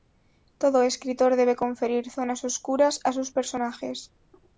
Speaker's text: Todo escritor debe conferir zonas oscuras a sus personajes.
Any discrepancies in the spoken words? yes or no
no